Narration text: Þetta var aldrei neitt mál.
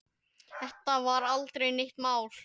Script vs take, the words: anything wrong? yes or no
no